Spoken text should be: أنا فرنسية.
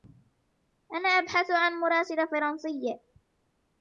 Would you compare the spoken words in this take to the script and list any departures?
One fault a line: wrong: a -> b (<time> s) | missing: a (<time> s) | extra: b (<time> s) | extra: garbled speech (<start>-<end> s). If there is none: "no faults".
extra: أبحث عن مراسلة (1.1 s)